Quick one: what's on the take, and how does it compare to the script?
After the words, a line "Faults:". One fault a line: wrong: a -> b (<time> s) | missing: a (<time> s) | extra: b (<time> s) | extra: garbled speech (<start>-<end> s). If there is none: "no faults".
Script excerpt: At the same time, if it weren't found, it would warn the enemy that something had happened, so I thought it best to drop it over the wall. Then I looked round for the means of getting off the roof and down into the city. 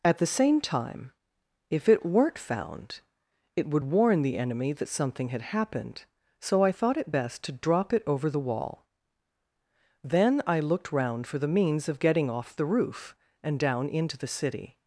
At the same time, if it weren't found, it would warn the enemy that something had happened, so I thought it best to drop it over the wall. Then I looked round for the means of getting off the roof and down into the city.
Faults:
no faults